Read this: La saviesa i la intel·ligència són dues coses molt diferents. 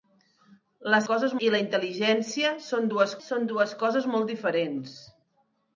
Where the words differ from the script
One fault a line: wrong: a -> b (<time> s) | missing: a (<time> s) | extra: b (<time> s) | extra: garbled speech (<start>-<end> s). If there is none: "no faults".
wrong: saviesa -> coses (1.1 s)
extra: són dues (3.3 s)